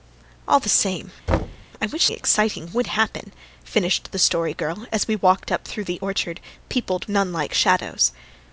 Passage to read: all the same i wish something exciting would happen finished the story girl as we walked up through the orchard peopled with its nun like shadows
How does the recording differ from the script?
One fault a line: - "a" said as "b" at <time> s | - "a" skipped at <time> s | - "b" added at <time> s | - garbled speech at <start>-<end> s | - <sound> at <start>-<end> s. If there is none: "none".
- thud at 1.3-1.7 s
- "something" skipped at 2.1 s
- "with its" skipped at 7.1 s